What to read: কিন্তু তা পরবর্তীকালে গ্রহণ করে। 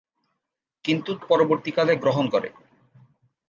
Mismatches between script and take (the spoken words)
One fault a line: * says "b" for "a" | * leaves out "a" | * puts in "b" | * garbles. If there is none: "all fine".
* leaves out "তা"